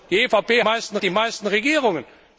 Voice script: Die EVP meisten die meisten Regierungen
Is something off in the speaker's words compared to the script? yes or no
no